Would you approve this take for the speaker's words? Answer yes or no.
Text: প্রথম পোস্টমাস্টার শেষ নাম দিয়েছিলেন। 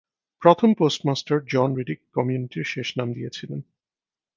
no